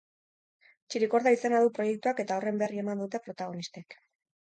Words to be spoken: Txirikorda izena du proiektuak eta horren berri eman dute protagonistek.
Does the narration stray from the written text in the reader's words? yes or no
no